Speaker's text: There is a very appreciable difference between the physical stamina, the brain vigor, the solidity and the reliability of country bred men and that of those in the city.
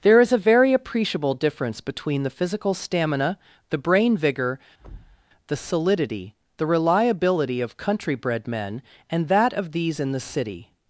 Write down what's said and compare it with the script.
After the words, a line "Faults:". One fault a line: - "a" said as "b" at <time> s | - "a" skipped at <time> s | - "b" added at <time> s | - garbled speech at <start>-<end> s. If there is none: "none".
There is a very appreciable difference between the physical stamina, the brain vigor, the solidity the reliability of country bred men and that of these in the city.
Faults:
- "and" skipped at 6.4 s
- "those" said as "these" at 9.7 s